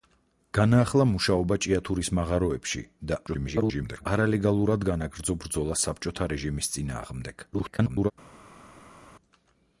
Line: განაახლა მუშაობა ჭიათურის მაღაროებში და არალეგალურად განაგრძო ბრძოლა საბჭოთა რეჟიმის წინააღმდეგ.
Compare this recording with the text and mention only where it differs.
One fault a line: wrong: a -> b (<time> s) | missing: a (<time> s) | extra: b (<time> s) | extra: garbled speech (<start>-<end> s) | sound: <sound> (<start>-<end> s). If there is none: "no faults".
extra: garbled speech (3.3-4.1 s)
extra: garbled speech (7.5-8.1 s)